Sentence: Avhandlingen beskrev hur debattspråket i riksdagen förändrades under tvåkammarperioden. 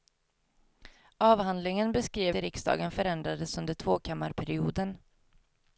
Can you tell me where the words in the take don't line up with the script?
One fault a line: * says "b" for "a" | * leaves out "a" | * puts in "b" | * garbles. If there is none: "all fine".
* leaves out "hur debattspråket"